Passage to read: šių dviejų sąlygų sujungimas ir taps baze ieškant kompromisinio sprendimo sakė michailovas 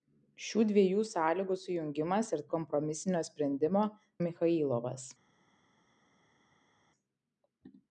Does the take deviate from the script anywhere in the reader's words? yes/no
yes